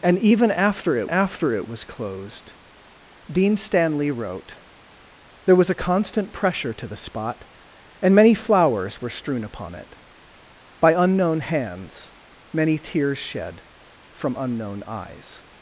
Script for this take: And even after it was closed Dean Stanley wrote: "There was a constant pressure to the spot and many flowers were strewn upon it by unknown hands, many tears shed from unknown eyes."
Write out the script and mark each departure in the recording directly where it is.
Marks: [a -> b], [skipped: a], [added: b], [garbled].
And even after it [added: after it] was closed Dean Stanley wrote: "There was a constant pressure to the spot and many flowers were strewn upon it by unknown hands, many tears shed from unknown eyes."